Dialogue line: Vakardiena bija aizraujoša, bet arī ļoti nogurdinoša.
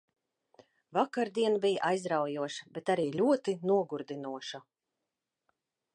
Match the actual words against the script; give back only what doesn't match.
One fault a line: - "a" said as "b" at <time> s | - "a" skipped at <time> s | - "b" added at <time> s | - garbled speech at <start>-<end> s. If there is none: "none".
none